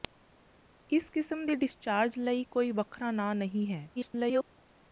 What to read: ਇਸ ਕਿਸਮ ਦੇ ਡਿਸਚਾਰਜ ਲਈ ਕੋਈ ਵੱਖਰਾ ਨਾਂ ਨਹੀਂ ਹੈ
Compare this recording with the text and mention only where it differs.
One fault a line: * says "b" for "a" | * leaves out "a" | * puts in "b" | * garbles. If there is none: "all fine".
* garbles